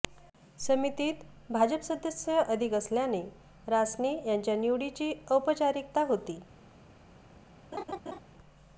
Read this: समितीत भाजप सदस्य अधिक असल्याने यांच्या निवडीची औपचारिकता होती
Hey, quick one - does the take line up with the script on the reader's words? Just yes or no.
no